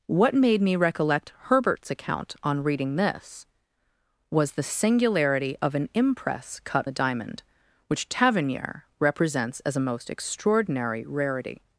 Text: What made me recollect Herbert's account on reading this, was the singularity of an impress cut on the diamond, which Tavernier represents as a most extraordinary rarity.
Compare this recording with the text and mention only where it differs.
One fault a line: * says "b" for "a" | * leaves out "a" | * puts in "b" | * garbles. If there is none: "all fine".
* leaves out "on"